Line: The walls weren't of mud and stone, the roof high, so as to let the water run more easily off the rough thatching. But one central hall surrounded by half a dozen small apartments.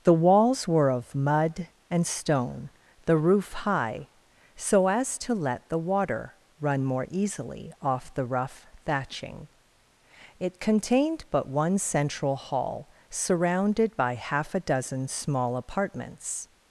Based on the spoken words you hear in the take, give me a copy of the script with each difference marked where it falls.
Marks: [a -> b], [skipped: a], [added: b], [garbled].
The walls [weren't -> were] of mud and stone, the roof high, so as to let the water run more easily off the rough thatching. [added: It contained] But one central hall surrounded by half a dozen small apartments.